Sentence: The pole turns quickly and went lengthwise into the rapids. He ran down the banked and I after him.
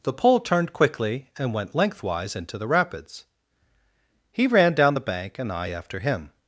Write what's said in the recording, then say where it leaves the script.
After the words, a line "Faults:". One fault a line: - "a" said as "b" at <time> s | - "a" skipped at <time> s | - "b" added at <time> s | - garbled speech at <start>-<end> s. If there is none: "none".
The pole turned quickly and went lengthwise into the rapids. He ran down the bank and I after him.
Faults:
- "turns" said as "turned" at 0.4 s
- "banked" said as "bank" at 5.0 s